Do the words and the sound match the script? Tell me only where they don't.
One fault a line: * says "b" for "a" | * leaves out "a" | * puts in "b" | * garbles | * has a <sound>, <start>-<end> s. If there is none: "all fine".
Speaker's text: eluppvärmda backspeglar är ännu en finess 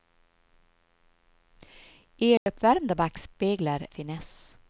* has a dropout, 2.4-2.5 s
* leaves out "är ännu en"